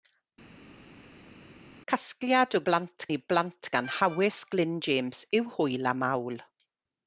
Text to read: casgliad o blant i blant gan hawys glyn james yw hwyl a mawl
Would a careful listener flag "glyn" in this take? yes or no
no